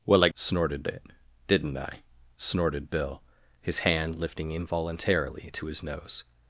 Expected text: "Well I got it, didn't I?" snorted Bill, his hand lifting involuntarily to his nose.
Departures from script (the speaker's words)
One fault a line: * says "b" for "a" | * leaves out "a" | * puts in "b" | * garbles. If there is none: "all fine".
* says "snorted" for "got"